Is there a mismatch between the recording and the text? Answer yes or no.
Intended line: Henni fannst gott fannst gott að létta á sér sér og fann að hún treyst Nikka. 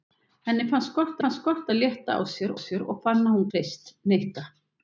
no